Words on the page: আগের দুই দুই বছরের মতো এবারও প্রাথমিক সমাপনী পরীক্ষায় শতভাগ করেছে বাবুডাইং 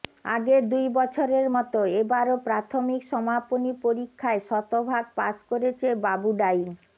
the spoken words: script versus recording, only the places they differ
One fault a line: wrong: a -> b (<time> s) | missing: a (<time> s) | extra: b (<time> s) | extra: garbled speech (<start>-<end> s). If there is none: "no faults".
missing: দুই (0.8 s)
extra: পাস (5.2 s)